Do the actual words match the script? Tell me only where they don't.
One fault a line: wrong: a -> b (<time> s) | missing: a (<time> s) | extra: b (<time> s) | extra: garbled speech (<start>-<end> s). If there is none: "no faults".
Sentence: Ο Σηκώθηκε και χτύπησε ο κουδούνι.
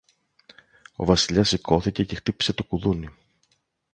extra: Βασιλιάς (1.1 s)
wrong: ο -> το (2.5 s)